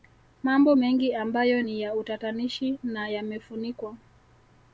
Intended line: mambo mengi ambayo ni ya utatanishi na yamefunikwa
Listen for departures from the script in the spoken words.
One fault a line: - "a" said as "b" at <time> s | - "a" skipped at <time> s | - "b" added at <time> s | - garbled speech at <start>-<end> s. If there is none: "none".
none